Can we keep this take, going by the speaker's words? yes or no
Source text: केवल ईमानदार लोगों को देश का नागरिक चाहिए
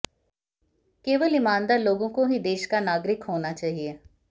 no